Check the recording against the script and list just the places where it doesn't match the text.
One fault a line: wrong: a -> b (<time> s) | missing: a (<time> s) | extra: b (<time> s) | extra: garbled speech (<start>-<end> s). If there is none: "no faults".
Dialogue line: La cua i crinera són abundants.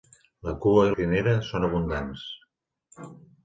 no faults